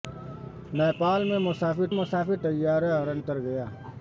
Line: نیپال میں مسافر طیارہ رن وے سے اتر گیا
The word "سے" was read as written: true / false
false